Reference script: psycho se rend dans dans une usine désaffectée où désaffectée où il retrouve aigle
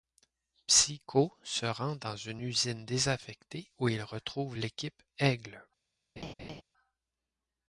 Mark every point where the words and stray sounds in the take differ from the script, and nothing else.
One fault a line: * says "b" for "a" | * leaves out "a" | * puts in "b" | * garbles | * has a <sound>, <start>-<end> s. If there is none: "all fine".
* leaves out "dans"
* leaves out "désaffectée où"
* puts in "l'équipe"
* has a laugh, 6.2-6.6 s